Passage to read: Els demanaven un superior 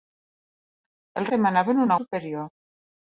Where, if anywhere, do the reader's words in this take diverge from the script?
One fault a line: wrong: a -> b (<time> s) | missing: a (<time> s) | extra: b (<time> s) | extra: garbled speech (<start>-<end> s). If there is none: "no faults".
no faults